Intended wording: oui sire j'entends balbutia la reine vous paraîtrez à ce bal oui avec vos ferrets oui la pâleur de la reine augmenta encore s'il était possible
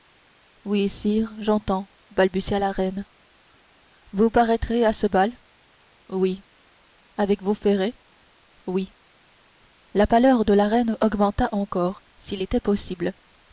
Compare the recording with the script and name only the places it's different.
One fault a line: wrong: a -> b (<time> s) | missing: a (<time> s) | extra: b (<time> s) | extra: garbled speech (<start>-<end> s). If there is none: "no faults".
no faults